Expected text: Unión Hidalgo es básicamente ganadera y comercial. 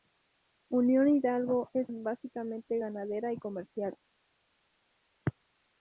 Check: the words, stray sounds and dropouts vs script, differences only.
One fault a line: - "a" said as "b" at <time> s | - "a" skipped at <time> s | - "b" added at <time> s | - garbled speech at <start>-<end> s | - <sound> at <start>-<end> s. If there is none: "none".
none